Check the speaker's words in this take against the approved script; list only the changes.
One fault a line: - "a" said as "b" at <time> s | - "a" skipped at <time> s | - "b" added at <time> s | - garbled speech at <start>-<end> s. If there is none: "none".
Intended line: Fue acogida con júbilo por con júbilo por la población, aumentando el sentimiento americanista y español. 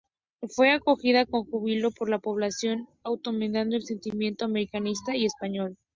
- "con júbilo por" skipped at 2.1 s